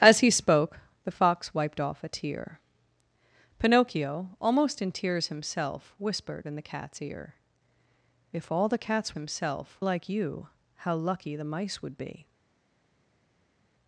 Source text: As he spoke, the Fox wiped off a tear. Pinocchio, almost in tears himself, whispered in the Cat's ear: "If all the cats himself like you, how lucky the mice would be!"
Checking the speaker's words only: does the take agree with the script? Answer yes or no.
yes